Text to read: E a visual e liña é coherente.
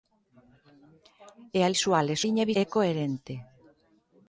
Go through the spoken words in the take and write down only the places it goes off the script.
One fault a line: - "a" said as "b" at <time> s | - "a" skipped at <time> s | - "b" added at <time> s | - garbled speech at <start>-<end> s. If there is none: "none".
none